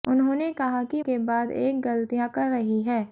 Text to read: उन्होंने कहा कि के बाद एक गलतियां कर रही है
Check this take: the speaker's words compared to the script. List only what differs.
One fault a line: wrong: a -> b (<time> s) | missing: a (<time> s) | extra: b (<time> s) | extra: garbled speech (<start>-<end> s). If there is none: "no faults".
no faults